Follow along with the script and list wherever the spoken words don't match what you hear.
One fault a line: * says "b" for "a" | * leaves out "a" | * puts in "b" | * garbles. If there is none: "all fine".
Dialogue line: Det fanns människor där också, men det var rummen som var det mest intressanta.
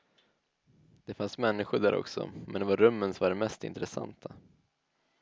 all fine